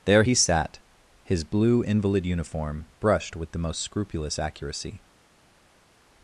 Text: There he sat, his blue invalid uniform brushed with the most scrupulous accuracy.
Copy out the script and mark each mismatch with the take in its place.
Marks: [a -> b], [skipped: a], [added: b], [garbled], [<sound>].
There he sat, his blue invalid uniform brushed with the most scrupulous accuracy.